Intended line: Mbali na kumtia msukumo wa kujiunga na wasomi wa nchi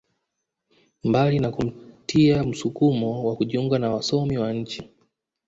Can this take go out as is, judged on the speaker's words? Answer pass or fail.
pass